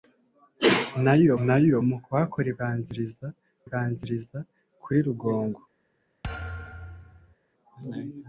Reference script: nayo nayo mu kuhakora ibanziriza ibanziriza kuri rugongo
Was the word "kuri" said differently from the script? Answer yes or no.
no